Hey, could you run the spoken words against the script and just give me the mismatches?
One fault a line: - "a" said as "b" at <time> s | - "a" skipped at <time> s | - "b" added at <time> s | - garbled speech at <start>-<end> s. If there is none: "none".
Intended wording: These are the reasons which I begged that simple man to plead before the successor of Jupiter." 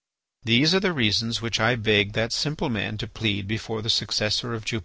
none